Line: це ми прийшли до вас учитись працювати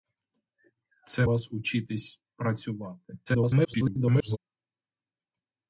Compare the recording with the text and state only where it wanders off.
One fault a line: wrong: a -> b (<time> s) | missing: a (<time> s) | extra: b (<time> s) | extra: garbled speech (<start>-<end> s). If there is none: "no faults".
missing: ми прийшли до (1.2 s)
extra: garbled speech (3.3-4.4 s)